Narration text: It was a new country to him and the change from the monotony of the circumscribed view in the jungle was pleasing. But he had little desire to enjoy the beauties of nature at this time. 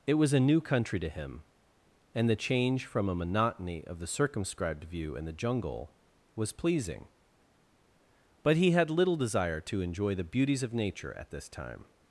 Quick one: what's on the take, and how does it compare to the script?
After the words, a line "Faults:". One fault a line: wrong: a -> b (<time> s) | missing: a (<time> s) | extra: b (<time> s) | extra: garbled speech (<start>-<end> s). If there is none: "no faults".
It was a new country to him and the change from a monotony of the circumscribed view in the jungle was pleasing. But he had little desire to enjoy the beauties of nature at this time.
Faults:
wrong: the -> a (3.1 s)